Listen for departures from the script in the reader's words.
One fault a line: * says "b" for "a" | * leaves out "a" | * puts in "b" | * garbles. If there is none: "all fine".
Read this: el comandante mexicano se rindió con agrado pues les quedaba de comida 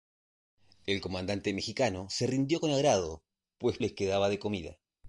all fine